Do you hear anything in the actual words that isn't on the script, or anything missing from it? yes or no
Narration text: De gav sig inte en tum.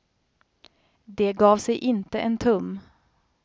no